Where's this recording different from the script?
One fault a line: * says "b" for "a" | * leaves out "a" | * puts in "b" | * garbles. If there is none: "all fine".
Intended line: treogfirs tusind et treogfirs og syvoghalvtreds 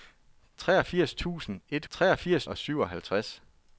all fine